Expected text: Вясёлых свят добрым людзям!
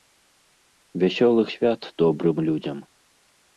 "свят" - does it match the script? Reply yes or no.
yes